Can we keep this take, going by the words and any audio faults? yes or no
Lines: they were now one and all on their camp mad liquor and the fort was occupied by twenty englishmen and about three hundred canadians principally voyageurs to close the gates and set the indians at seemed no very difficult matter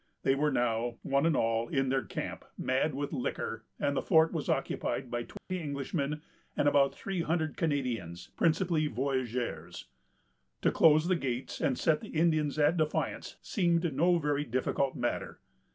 no